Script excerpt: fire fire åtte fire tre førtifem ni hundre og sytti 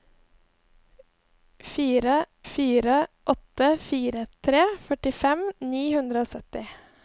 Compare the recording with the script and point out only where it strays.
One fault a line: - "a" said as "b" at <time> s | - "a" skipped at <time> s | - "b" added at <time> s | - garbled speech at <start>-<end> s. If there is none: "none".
none